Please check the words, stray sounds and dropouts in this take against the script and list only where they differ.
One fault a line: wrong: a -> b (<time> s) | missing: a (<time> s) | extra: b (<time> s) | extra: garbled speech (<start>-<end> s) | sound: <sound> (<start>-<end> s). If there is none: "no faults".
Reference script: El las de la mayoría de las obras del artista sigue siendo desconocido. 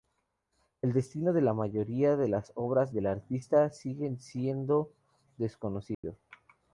wrong: las -> destino (0.9 s)
sound: dropout (5.9-6.0 s)